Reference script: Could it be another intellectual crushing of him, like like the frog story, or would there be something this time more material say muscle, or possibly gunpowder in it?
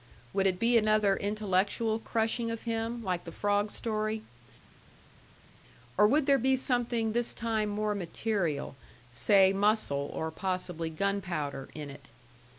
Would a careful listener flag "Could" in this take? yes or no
yes